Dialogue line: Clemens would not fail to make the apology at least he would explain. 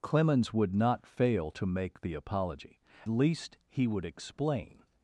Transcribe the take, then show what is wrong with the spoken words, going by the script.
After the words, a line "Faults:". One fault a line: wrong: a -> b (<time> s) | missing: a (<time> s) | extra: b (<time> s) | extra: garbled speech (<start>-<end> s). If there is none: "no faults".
Clemens would not fail to make the apology least he would explain.
Faults:
missing: at (2.8 s)